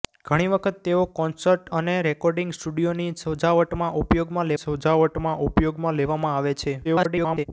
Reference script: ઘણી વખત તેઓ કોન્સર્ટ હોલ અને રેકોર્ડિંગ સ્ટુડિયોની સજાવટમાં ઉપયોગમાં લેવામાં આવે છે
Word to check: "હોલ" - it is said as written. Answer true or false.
false